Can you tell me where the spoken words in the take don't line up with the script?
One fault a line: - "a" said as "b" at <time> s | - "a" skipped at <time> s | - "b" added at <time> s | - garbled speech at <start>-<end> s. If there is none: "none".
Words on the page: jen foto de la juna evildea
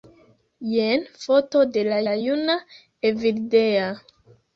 - "la" added at 2.1 s